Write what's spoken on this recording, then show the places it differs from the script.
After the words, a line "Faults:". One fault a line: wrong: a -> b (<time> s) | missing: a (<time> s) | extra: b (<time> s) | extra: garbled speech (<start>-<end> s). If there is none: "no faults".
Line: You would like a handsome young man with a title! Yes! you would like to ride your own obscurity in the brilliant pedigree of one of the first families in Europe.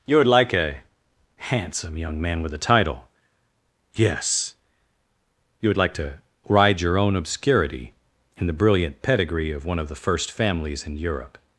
You would like a handsome young man with a title! Yes! you would like to ride your own obscurity in the brilliant pedigree of one of the first families in Europe.
Faults:
no faults